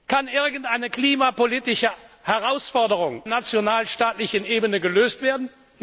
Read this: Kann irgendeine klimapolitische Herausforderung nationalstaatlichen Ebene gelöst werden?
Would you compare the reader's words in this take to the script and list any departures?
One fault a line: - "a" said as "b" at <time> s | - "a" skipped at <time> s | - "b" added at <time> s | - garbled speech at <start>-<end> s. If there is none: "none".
none